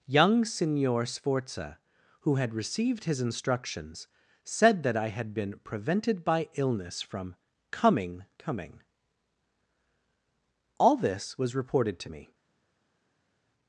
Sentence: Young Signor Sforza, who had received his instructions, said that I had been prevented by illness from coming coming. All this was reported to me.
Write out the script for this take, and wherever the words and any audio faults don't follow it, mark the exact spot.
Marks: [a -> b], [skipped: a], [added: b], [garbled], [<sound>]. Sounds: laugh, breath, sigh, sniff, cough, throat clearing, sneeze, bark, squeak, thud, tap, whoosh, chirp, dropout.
Young Signor Sforza, who had received his instructions, said that I had been prevented by illness from coming coming. All this was reported to me.